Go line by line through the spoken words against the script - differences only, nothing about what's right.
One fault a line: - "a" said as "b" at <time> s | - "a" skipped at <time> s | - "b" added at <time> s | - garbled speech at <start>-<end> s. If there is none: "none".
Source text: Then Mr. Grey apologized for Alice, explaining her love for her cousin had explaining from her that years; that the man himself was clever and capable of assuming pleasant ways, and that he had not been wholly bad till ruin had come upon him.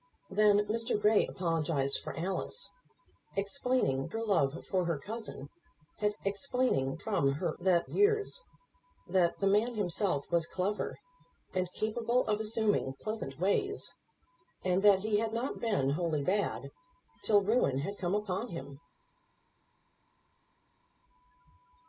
none